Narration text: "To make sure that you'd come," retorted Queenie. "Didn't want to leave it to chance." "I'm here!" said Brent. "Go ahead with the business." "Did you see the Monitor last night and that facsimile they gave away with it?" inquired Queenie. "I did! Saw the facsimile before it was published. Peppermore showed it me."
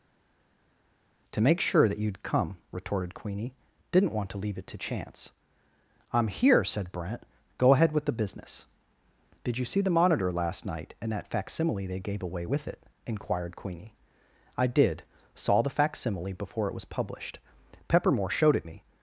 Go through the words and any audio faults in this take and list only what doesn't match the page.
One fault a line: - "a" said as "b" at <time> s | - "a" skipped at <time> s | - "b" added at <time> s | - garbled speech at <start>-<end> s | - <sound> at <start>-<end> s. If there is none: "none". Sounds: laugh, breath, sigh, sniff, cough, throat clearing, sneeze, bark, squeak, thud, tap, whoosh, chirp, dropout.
none